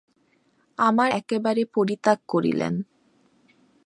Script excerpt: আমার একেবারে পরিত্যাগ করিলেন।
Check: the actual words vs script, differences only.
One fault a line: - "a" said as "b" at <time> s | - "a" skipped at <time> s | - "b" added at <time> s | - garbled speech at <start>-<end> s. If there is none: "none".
none